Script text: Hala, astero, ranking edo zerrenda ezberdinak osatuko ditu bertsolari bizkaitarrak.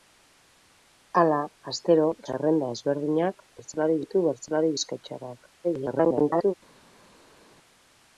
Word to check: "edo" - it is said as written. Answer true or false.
false